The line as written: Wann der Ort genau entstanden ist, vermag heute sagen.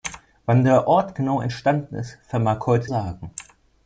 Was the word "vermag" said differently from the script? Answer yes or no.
no